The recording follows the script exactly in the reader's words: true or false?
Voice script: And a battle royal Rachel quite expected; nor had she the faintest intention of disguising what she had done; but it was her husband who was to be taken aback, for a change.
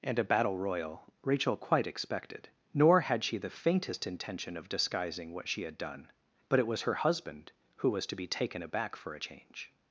true